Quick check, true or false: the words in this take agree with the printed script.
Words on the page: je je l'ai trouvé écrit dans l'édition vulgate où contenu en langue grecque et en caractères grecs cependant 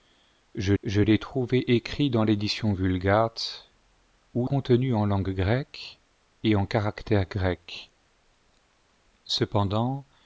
true